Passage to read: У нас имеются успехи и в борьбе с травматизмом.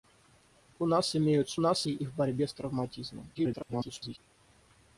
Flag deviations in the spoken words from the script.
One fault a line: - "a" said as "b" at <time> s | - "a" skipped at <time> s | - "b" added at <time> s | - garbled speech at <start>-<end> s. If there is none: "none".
- "успехи" said as "нас" at 1.6 s
- garbled speech at 3.3-4.2 s